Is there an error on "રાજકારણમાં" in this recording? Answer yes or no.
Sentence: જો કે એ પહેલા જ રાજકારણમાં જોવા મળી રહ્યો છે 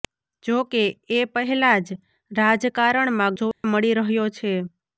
no